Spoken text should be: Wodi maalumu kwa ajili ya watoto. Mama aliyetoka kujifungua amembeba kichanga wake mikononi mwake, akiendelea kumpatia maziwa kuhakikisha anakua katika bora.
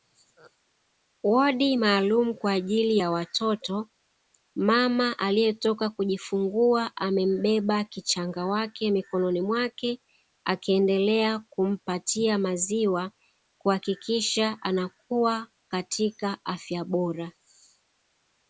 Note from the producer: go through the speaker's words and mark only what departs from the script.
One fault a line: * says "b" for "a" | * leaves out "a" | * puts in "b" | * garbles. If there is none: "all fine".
* puts in "afya"